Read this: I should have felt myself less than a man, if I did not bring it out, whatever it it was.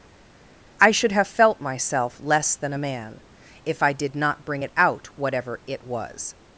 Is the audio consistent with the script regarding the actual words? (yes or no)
no